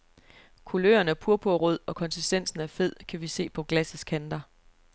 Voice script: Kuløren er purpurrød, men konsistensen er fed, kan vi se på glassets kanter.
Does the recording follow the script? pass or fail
fail